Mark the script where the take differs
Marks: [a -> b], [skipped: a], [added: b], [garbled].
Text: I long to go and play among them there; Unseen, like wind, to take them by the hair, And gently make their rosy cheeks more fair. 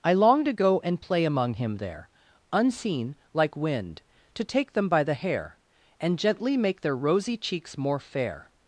I long to go and play among [them -> him] there; Unseen, like wind, to take them by the hair, And gently make their rosy cheeks more fair.